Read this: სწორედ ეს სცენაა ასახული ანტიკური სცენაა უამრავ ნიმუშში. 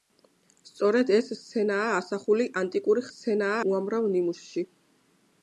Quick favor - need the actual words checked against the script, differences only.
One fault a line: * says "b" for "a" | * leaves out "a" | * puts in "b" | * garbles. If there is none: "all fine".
all fine